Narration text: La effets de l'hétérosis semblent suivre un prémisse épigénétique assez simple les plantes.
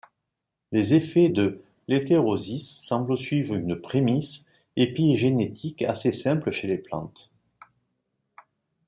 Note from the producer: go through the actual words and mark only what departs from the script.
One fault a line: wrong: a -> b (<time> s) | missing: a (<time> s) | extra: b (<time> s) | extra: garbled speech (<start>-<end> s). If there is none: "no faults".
wrong: La -> Les (0.7 s)
wrong: un -> une (3.6 s)
extra: chez (6.5 s)